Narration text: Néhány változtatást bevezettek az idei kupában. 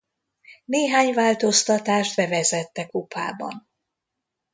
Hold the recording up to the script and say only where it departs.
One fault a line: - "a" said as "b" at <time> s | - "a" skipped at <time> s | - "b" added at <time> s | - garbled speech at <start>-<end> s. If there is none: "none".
- "az idei" skipped at 2.9 s